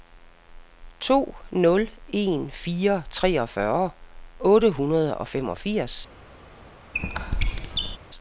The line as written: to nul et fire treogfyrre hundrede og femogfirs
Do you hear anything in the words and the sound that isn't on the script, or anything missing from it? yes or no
yes